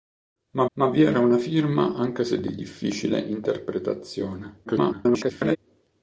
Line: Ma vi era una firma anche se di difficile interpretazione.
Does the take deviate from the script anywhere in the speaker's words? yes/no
yes